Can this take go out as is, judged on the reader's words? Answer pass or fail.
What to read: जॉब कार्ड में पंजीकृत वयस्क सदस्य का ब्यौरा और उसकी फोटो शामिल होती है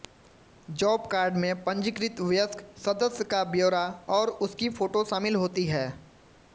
pass